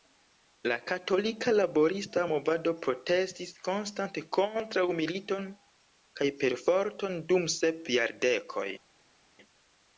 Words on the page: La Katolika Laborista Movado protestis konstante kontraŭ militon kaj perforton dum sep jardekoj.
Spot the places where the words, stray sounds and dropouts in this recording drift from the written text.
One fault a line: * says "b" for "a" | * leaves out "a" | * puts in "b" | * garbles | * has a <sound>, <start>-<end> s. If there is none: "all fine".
all fine